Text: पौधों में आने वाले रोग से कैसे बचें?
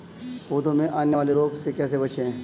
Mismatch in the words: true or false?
false